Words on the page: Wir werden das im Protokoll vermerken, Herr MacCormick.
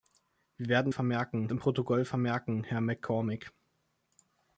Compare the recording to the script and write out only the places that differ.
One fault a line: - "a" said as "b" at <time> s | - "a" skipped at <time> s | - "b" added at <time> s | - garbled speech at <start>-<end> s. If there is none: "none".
- "das" said as "vermerken" at 0.9 s